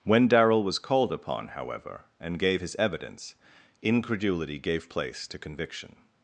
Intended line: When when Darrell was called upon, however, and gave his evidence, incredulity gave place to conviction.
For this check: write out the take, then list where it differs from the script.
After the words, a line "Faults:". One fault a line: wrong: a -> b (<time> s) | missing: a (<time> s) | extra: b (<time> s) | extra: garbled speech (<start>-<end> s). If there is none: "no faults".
When Darrell was called upon, however, and gave his evidence, incredulity gave place to conviction.
Faults:
missing: when (0.3 s)